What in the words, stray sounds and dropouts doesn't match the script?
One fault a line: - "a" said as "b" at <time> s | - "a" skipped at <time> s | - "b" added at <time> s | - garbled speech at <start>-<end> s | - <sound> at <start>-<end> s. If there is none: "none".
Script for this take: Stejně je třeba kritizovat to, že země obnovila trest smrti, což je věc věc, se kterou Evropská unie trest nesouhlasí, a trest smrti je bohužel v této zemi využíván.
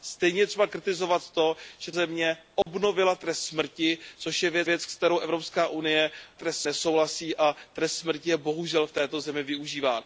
- dropout at 2.6-2.7 s